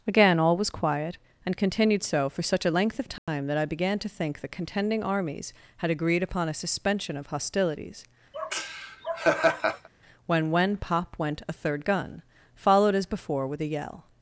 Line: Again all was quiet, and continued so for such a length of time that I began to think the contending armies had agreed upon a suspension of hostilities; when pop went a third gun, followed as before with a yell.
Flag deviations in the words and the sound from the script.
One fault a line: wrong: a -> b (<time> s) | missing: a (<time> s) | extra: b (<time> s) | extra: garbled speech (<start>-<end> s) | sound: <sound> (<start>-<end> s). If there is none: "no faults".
sound: dropout (3.2-3.3 s)
sound: laugh (8.3-9.9 s)
extra: when (10.5 s)